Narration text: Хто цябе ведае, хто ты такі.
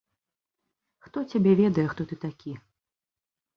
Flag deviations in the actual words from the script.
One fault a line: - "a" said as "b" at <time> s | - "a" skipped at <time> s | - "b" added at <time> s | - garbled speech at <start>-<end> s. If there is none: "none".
none